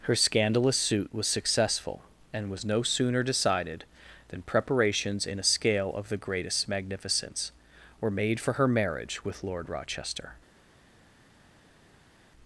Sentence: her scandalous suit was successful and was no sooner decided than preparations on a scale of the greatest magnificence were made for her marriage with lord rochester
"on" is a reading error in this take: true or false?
true